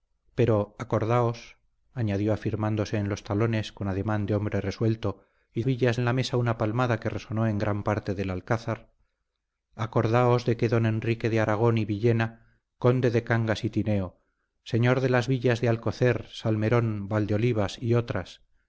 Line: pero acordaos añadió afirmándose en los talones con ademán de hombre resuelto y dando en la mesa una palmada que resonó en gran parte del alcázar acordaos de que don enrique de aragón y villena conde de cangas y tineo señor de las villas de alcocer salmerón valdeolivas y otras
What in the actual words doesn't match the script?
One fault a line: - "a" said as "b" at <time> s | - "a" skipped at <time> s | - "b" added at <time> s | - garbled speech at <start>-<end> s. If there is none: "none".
- "dando" said as "villas" at 5.6 s